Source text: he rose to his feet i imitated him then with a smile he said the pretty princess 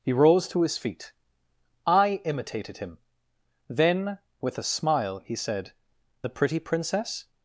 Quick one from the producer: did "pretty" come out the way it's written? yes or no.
yes